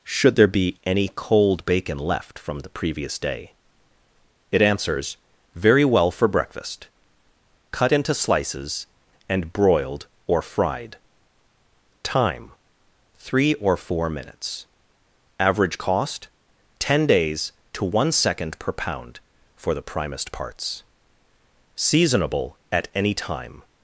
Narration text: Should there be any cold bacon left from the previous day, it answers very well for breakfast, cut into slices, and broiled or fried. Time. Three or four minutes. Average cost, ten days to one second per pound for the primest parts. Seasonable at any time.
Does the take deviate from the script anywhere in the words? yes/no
no